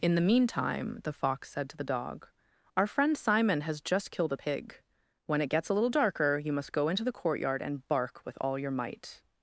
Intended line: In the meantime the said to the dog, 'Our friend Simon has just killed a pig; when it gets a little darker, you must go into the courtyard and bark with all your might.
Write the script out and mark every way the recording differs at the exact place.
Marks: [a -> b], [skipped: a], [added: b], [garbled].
In the meantime the [added: fox] said to the dog, 'Our friend Simon has just killed a pig; when it gets a little darker, you must go into the courtyard and bark with all your might.